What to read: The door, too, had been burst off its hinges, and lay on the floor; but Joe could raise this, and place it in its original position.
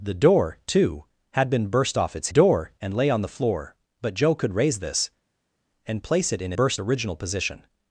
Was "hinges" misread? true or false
true